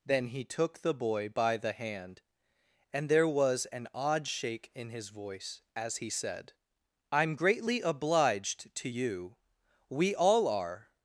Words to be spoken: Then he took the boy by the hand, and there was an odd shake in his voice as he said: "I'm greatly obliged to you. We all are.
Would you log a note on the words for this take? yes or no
no